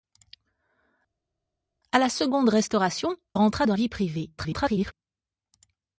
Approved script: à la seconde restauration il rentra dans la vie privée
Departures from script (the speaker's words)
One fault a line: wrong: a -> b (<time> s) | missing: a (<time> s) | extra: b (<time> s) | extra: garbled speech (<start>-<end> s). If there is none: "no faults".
missing: il (3.2 s)
missing: la (3.7 s)
extra: garbled speech (4.4-4.9 s)